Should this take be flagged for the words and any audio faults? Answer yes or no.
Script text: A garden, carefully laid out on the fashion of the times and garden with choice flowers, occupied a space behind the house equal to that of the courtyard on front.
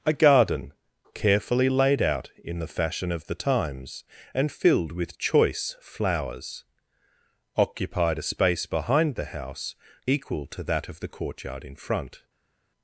yes